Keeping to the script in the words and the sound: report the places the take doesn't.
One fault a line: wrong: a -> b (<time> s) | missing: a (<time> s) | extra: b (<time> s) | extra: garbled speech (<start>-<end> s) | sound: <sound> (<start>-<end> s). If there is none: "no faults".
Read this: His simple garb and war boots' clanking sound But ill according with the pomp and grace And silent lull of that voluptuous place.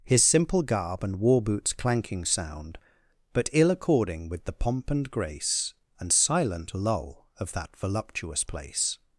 no faults